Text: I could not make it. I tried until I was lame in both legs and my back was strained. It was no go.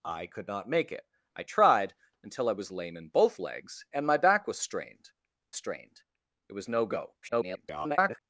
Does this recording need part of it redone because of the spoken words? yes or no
yes